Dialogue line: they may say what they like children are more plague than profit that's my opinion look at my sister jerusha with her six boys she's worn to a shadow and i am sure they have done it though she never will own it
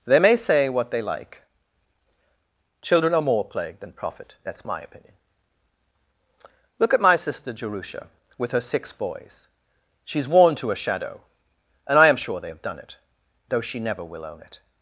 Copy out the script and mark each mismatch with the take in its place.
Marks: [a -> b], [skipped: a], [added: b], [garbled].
they may say what they like children are more plague than profit that's my opinion look at my sister jerusha with her six boys she's worn to a shadow and i am sure they have done it though she never will own it